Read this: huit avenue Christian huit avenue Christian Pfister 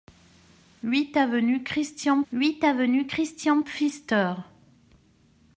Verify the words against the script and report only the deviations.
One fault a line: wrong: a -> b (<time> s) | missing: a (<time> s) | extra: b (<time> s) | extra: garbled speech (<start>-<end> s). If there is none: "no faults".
no faults